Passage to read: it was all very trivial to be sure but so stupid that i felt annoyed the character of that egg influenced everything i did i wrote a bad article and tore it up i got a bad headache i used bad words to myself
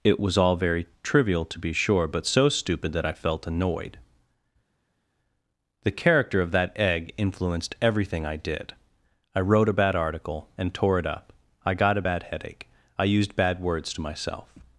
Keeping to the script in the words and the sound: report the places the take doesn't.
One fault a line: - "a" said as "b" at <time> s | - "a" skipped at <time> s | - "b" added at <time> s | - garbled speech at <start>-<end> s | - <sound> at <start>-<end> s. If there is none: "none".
none